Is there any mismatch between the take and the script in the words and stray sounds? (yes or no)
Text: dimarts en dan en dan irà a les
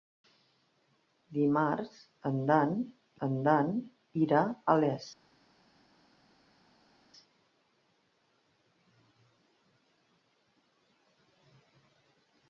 no